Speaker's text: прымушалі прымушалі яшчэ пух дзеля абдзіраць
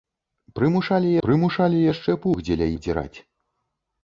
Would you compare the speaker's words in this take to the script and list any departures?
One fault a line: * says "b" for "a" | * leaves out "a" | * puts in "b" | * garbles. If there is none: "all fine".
all fine